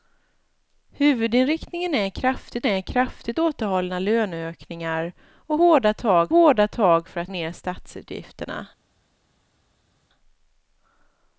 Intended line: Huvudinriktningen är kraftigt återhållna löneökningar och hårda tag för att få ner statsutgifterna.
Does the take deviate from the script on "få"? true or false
true